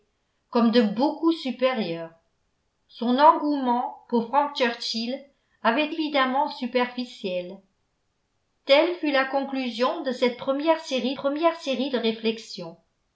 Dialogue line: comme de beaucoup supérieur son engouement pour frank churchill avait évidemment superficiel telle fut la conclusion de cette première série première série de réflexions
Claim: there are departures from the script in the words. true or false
false